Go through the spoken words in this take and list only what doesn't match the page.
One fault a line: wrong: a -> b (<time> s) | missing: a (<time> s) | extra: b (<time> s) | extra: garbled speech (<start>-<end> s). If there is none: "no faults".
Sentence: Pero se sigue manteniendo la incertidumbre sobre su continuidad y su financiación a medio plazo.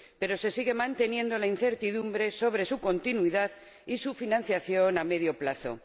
no faults